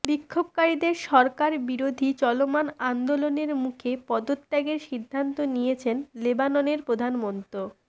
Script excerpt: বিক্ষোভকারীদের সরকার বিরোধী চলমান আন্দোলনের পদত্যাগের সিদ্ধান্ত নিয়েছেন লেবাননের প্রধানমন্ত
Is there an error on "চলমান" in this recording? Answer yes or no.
no